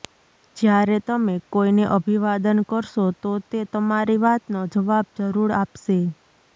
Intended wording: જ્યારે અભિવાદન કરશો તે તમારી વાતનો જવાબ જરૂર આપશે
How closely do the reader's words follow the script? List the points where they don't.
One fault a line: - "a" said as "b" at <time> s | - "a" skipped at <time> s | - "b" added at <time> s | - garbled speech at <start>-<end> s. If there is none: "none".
- "તમે કોઈને" added at 1.1 s
- "તો" added at 3.2 s